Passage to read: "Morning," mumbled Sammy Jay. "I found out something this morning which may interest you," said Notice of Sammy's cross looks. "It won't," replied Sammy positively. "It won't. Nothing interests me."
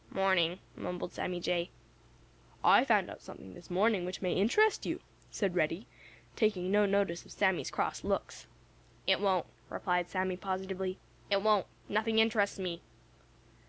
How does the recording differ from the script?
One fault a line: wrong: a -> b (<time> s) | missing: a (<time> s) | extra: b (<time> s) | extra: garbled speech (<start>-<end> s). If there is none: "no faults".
extra: Reddy taking no (5.5 s)